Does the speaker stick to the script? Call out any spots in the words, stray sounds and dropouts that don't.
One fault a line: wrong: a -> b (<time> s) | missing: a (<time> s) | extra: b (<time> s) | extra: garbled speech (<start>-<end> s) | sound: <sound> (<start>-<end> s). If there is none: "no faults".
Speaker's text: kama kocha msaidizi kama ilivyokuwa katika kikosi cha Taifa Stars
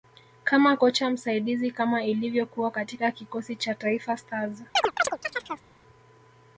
sound: chirp (4.8-5.6 s)